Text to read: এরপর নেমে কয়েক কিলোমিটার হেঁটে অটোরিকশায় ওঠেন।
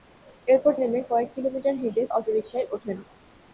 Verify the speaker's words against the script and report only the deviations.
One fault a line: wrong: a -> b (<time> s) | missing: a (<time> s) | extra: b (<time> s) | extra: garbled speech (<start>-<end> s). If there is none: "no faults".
no faults